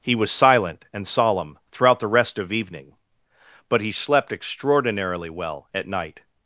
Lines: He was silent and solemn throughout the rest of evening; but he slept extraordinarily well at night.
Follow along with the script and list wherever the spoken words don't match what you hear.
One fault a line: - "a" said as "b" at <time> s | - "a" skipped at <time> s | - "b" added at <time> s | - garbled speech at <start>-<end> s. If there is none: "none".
none